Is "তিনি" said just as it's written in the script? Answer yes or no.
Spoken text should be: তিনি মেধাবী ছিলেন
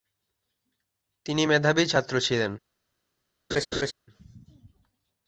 yes